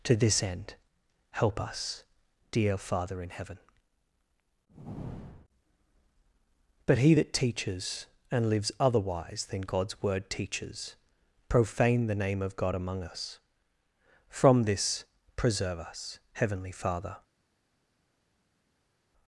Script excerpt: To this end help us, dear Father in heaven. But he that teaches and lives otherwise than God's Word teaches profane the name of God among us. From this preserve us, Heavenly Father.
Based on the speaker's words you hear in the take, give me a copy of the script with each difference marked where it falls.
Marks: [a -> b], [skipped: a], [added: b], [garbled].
To this end help us, dear Father in heaven. But he that teaches and lives otherwise than God's Word teaches profane the name of God among us. From this preserve us, Heavenly Father.